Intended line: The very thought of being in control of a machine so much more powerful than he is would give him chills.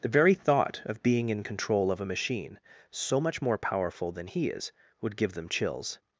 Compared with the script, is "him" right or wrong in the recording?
wrong